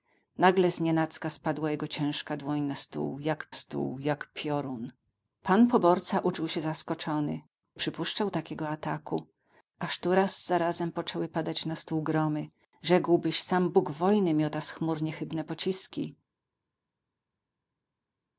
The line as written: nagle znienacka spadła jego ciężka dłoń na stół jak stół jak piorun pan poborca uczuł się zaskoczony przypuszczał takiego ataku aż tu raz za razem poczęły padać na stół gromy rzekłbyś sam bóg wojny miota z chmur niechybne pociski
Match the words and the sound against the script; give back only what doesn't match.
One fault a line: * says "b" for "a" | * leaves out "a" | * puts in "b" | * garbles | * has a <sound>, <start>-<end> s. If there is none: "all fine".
all fine